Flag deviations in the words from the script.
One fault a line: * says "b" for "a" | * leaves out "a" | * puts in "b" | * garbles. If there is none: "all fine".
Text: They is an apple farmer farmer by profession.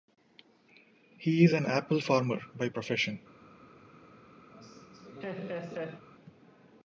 * says "He" for "They"
* leaves out "farmer"